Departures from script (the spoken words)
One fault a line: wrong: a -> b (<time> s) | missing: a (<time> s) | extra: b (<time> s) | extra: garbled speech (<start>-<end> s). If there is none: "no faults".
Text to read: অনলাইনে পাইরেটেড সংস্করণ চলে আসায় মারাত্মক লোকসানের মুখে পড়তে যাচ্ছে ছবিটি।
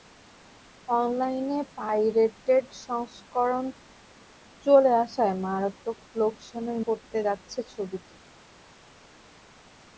missing: মুখে (6.8 s)